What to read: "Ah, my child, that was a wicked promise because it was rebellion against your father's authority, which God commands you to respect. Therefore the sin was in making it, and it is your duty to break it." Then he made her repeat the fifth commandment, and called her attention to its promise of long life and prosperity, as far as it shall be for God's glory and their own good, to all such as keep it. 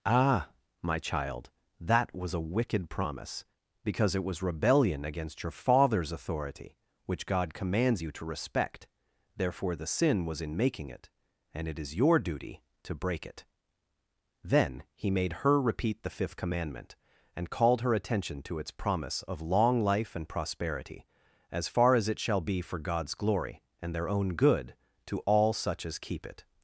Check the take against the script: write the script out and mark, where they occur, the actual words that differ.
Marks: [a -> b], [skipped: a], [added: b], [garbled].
"Ah, my child, that was a wicked promise because it was rebellion against your father's authority, which God commands you to respect. Therefore the sin was in making it, and it is your duty to break it." Then he made her repeat the fifth commandment, and called her attention to its promise of long life and prosperity, as far as it shall be for God's glory and their own good, to all such as keep it.